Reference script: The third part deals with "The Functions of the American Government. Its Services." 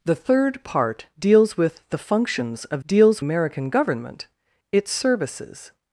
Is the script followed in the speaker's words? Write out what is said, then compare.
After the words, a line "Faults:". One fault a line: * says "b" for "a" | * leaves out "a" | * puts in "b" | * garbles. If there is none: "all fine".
The third part deals with "The Functions of deals American Government. Its Services."
Faults:
* says "deals" for "the"